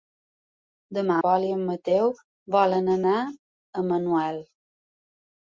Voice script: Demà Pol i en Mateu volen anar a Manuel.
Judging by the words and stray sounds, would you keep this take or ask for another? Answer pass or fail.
pass